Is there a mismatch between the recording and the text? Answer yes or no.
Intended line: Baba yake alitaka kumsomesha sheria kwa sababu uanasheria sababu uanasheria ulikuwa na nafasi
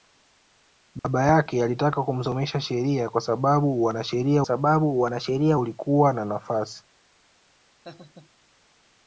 no